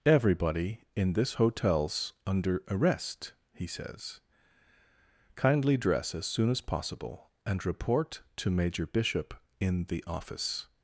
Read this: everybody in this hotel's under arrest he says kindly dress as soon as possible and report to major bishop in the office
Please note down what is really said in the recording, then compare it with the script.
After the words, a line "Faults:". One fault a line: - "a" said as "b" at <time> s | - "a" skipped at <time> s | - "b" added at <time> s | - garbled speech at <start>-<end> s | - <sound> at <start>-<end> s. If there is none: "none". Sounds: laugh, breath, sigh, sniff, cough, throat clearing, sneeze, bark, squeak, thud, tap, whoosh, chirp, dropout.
everybody in this hotel's under arrest he says kindly dress as soon as possible and report to major bishop in the office
Faults:
none